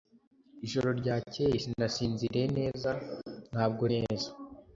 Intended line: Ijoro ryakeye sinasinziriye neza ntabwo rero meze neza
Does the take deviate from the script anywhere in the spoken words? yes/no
yes